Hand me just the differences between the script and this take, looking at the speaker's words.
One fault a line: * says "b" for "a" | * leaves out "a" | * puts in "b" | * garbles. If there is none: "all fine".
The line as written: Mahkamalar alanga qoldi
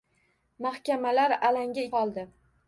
all fine